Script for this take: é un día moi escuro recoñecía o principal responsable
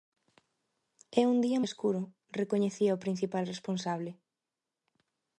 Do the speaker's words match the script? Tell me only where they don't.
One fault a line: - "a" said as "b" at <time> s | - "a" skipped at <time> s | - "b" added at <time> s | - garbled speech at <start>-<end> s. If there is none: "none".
- "moi" skipped at 1.6 s